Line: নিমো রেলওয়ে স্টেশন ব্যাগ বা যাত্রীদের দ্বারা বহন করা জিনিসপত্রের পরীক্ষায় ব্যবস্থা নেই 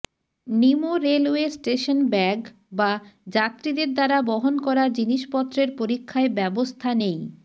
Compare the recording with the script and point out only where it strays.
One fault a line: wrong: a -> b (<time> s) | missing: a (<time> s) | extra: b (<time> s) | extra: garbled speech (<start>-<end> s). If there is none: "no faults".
no faults